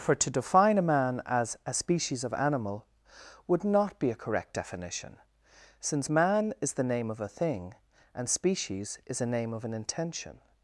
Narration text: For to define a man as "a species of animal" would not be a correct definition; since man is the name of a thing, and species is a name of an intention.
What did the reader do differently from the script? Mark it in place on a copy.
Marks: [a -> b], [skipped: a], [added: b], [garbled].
For to define a man as "a species of animal" would not be a correct definition; since man is the name of a thing, and species is a name of an intention.